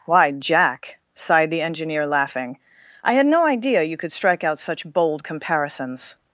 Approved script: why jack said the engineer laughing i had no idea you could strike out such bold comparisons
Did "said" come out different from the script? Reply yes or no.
yes